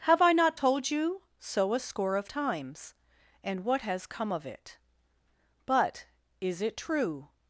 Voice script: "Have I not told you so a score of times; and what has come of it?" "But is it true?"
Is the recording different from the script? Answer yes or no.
no